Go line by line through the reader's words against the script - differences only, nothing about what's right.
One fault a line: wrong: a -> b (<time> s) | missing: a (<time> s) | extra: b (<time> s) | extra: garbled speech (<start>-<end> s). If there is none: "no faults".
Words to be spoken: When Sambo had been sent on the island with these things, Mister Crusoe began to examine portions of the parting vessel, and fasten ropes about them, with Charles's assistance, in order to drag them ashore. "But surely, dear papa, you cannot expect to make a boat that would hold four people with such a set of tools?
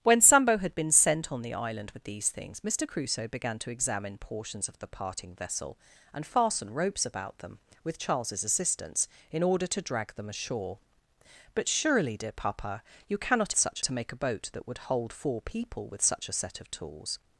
wrong: expect -> such (13.6 s)